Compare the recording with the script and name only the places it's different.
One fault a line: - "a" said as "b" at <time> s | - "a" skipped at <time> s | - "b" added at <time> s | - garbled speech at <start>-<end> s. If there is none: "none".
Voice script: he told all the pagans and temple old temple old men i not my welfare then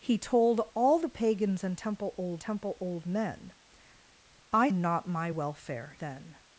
none